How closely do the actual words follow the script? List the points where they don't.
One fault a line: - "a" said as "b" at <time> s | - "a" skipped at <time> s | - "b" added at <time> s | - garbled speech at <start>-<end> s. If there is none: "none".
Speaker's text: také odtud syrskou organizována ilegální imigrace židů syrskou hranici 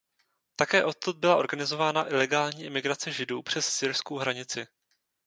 - "syrskou" said as "byla" at 1.2 s
- "přes" added at 3.4 s